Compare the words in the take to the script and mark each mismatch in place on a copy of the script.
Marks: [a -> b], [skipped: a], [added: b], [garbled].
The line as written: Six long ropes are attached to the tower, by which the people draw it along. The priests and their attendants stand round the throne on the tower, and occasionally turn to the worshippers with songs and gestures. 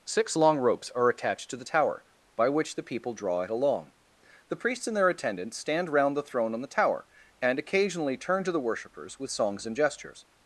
Six long ropes are attached to the tower, by which the people draw it along. The priests and their attendants stand round the throne on the tower, and occasionally turn to the worshippers with songs and gestures.